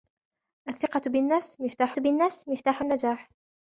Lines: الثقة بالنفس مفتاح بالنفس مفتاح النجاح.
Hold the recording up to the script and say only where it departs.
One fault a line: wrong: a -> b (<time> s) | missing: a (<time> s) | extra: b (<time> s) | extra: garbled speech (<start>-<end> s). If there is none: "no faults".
no faults